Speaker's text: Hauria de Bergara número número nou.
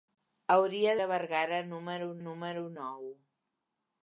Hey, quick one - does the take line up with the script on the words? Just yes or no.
yes